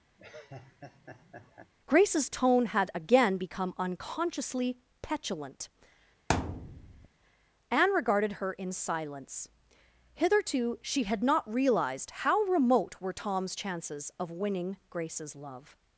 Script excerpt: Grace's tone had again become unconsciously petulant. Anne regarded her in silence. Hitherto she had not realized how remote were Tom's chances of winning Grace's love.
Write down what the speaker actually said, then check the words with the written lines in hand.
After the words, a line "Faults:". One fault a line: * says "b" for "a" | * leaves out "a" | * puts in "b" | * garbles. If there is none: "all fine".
Grace's tone had again become unconsciously petulant. Anne regarded her in silence. Hitherto she had not realized how remote were Tom's chances of winning Grace's love.
Faults:
all fine